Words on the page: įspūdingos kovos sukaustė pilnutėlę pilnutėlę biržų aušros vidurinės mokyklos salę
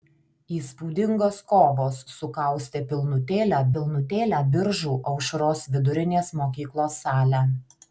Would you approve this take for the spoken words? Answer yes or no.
yes